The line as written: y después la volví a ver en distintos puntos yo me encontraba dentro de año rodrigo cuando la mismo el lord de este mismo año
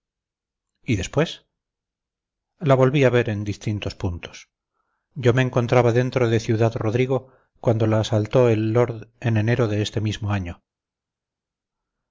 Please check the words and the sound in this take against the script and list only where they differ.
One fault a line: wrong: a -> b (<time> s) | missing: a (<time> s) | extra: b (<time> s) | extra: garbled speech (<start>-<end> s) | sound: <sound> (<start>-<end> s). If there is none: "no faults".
wrong: año -> ciudad (6.4 s)
wrong: mismo -> asaltó (8.0 s)
extra: en enero (9.2 s)